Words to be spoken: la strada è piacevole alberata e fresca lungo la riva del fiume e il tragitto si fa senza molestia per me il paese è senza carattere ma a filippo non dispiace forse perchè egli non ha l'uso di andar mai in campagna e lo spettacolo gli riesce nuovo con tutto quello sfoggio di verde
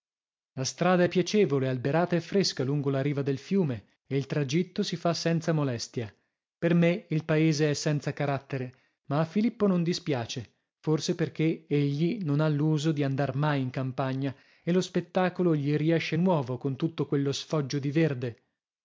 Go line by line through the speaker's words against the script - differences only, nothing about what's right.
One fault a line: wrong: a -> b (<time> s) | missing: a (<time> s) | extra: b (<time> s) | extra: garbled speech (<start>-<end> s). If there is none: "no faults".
no faults